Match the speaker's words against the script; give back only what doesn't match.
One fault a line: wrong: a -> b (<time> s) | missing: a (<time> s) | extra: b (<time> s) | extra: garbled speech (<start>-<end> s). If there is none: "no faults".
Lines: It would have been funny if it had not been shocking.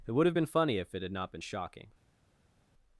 no faults